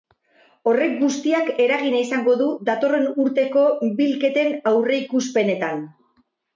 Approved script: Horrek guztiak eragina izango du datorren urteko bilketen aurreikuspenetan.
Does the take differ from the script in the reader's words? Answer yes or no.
no